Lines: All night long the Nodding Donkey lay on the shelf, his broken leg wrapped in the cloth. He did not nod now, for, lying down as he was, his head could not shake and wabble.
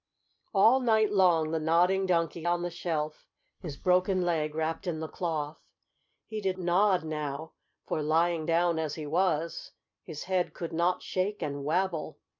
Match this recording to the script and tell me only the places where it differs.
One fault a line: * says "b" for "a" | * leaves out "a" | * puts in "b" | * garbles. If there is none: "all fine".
* leaves out "lay"
* leaves out "not"